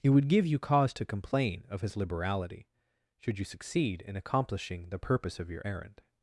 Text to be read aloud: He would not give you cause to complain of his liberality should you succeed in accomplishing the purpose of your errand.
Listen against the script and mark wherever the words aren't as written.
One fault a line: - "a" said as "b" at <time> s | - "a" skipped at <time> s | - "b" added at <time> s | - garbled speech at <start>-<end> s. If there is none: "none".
- "not" skipped at 0.3 s